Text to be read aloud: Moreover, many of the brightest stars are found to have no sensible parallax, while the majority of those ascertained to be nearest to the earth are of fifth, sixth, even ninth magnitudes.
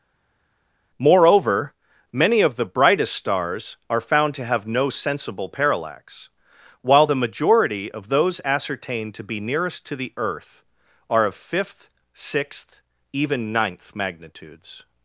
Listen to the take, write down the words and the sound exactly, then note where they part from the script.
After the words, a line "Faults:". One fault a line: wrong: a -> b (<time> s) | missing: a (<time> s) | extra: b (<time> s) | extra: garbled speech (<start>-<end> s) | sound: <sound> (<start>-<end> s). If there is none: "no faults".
Moreover, many of the brightest stars are found to have no sensible parallax, while the majority of those ascertained to be nearest to the earth are of fifth, sixth, even ninth magnitudes.
Faults:
no faults